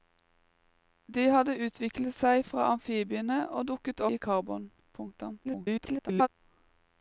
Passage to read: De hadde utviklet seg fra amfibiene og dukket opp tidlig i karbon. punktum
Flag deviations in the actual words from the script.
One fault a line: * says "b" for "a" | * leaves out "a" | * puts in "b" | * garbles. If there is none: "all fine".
* leaves out "opp tidlig"
* garbles